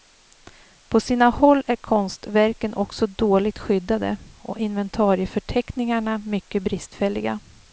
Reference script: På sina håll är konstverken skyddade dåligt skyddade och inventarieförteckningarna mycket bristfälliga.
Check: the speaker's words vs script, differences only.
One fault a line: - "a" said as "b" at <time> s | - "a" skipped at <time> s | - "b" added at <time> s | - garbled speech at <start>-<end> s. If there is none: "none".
- "skyddade" said as "också" at 2.7 s